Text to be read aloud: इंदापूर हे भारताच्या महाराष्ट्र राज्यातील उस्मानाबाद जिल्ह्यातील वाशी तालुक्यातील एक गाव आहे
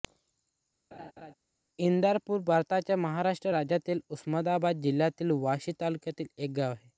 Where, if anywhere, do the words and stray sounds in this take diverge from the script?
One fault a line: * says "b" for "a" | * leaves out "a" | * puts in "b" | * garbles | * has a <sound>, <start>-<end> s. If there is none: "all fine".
* has a laugh, 0.9-1.3 s